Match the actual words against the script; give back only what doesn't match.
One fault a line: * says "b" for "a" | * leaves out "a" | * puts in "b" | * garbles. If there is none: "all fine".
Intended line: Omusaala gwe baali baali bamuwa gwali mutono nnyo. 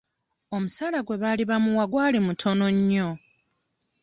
* leaves out "baali"